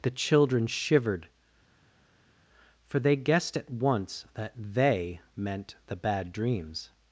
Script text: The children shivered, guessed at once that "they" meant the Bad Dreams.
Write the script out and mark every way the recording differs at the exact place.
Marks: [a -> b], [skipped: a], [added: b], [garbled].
The children shivered, [added: for they] guessed at once that "they" meant the Bad Dreams.